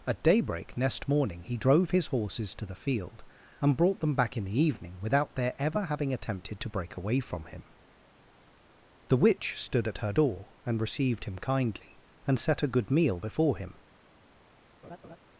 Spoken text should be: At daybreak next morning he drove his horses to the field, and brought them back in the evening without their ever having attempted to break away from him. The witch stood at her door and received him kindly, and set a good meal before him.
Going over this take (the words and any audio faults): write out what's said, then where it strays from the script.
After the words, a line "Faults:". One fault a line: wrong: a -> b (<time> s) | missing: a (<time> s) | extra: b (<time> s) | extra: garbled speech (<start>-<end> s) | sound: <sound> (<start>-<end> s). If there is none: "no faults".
At daybreak next morning he drove his horses to the field, and brought them back in the evening without their ever having attempted to break away from him. The witch stood at her door and received him kindly, and set a good meal before him.
Faults:
sound: laugh (14.8-15.2 s)